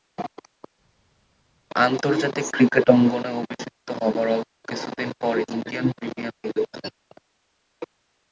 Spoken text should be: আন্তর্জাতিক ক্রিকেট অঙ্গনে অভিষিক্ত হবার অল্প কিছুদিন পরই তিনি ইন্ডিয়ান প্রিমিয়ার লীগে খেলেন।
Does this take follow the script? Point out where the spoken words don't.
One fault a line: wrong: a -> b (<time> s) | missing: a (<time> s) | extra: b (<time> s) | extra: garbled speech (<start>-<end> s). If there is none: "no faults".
missing: তিনি (5.4 s)